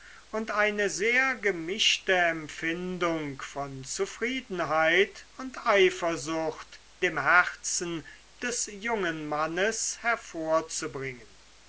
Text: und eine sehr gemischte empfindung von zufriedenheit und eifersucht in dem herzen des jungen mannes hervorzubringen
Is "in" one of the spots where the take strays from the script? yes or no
yes